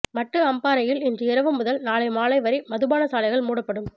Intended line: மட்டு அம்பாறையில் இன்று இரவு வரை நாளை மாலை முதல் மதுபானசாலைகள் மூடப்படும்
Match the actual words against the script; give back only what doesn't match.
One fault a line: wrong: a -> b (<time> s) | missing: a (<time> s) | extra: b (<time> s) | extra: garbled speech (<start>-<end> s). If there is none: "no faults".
wrong: வரை -> முதல் (1.5 s)
wrong: முதல் -> வரை (2.4 s)